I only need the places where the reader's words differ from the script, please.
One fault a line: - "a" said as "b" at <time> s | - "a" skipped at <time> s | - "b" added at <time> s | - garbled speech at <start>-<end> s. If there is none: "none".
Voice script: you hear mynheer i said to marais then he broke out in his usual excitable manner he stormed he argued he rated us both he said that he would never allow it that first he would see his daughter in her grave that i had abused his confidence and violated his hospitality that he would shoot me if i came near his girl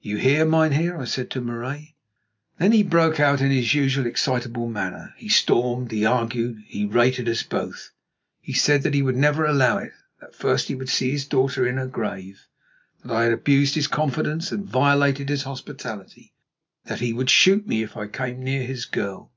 none